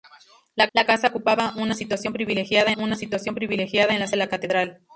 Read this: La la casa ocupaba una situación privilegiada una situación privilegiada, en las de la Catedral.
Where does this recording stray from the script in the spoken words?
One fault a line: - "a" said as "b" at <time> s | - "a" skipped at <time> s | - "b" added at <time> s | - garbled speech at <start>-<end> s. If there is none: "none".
none